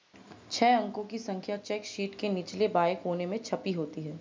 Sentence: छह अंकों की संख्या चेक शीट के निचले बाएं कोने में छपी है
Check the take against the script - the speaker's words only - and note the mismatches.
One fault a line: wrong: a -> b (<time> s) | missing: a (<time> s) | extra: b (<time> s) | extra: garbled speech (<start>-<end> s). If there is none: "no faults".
extra: होती (3.7 s)